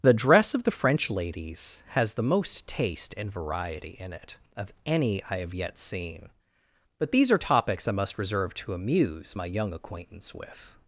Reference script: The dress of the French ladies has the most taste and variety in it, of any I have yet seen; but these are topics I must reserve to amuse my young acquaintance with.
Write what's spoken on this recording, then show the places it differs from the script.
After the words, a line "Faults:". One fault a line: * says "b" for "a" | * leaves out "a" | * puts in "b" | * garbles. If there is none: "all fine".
The dress of the French ladies has the most taste and variety in it, of any I have yet seen; but these are topics I must reserve to amuse my young acquaintance with.
Faults:
all fine